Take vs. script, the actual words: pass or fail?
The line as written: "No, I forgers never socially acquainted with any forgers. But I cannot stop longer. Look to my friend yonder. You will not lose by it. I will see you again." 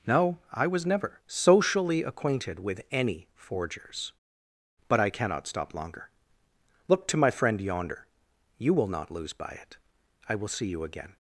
fail